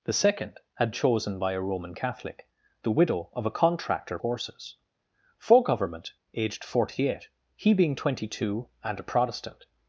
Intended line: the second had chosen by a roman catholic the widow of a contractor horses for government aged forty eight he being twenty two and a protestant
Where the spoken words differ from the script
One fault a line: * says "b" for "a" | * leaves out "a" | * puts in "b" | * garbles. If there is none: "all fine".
all fine